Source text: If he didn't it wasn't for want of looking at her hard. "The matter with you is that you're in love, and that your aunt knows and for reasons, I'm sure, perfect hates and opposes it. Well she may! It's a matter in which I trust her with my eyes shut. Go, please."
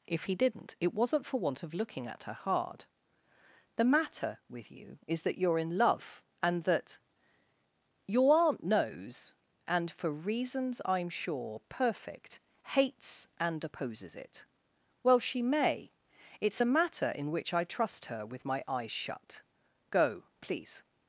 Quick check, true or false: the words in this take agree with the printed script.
true